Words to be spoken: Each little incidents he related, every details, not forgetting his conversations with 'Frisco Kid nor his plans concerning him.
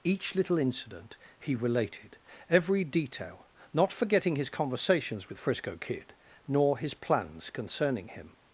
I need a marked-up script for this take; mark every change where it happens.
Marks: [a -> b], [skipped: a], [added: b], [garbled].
Each little [incidents -> incident] he related, every [details, -> detail] not forgetting his conversations with 'Frisco Kid nor his plans concerning him.